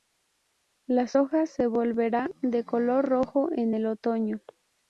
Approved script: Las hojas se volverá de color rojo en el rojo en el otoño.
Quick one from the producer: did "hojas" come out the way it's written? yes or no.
yes